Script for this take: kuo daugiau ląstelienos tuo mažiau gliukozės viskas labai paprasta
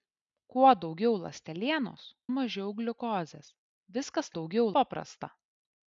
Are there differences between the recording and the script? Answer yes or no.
yes